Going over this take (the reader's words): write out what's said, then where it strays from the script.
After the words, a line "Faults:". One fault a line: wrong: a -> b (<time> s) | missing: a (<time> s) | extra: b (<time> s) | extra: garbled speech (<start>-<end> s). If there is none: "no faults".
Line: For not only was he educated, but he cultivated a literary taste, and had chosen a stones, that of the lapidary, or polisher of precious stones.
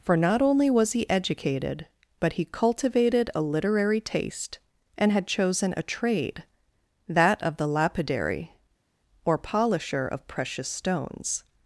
For not only was he educated, but he cultivated a literary taste, and had chosen a trade, that of the lapidary, or polisher of precious stones.
Faults:
wrong: stones -> trade (5.8 s)